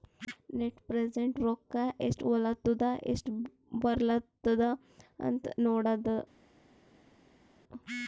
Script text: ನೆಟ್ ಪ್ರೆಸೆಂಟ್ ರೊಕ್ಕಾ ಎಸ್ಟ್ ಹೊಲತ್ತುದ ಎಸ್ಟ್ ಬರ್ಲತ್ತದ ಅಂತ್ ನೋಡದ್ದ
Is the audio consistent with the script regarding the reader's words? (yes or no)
yes